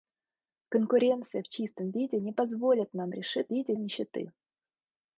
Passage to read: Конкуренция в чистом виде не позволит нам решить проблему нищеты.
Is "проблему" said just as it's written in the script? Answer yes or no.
no